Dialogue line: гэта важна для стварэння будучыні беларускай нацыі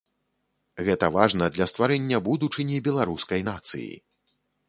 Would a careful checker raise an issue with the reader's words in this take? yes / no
no